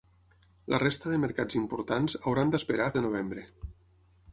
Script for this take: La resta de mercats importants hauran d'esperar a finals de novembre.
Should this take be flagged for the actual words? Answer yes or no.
yes